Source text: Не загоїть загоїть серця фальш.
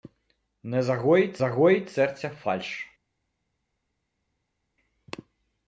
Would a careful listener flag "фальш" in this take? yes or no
no